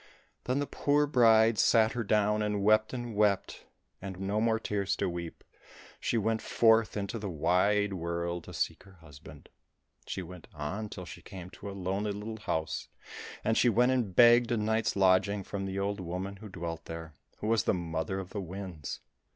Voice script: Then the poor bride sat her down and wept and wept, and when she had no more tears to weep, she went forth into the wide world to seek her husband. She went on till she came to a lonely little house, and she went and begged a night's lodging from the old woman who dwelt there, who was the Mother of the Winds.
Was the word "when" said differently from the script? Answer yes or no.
yes